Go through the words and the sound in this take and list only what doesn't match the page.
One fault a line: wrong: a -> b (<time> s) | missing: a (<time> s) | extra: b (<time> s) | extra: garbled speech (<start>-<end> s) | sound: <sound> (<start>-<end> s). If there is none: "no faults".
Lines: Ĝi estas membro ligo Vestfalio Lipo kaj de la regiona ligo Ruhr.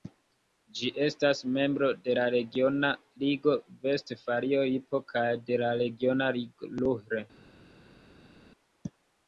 extra: de la regiona (2.1 s)